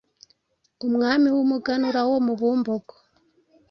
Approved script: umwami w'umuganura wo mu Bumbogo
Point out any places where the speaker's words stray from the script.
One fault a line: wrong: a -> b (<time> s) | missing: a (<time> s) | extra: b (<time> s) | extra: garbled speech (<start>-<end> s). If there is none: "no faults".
no faults